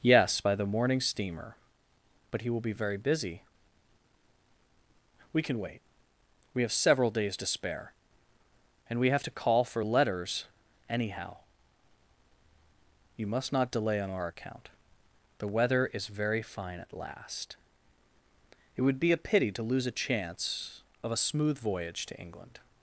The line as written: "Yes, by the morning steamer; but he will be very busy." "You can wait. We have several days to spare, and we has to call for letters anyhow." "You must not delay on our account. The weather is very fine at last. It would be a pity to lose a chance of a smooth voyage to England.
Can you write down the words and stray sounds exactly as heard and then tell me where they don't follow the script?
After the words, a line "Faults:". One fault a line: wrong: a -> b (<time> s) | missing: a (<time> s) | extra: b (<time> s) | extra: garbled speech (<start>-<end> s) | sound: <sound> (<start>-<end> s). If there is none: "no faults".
"Yes, by the morning steamer; but he will be very busy." "We can wait. We have several days to spare, and we have to call for letters anyhow." "You must not delay on our account. The weather is very fine at last. It would be a pity to lose a chance of a smooth voyage to England.
Faults:
wrong: You -> We (5.3 s)
wrong: has -> have (9.1 s)